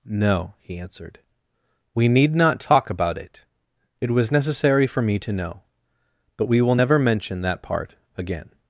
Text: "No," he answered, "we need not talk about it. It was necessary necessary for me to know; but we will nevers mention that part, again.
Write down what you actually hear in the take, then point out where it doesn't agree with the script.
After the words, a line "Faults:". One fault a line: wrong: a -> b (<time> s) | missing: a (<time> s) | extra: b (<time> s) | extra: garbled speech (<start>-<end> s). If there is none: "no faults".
"No," he answered, "we need not talk about it. It was necessary for me to know; but we will never mention that part, again.
Faults:
missing: necessary (4.9 s)
wrong: nevers -> never (6.7 s)